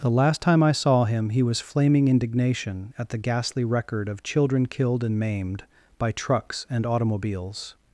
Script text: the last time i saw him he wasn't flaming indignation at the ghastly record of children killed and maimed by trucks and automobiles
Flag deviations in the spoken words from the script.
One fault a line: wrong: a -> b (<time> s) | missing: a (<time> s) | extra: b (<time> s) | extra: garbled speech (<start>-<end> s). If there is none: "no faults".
wrong: wasn't -> was (1.4 s)